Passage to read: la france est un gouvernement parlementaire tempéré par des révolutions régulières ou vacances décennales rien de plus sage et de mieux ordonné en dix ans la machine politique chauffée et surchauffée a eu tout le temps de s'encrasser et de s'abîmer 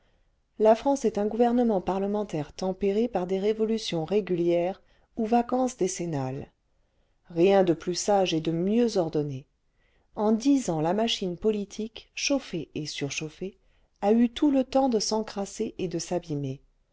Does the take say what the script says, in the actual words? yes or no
yes